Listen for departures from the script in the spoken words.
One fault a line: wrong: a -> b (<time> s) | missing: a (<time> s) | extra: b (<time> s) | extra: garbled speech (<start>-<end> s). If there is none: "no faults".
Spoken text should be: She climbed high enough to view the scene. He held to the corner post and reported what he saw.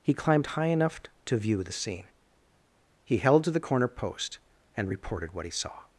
wrong: She -> He (0.0 s)